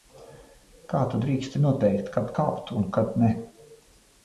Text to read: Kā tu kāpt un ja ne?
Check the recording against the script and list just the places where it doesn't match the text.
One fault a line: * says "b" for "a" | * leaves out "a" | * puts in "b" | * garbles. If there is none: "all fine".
* puts in "drīksti noteikt kad"
* says "kad" for "ja"